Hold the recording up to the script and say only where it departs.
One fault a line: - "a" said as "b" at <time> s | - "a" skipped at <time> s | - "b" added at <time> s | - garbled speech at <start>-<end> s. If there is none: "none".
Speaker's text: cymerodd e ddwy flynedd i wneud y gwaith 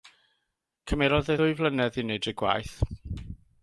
none